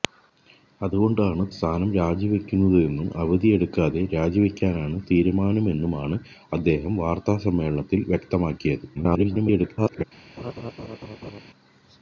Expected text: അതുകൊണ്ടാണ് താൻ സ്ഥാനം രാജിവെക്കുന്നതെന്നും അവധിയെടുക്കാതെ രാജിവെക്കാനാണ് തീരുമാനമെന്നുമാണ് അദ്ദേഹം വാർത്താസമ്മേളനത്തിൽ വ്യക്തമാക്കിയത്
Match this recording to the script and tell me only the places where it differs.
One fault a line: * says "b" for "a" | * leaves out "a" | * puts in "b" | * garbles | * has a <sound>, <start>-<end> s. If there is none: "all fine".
* leaves out "താൻ"
* garbles
* has a laugh, 10.4-11.4 s